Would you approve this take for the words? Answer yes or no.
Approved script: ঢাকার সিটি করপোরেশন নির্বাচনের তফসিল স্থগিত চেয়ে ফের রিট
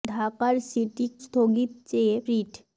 no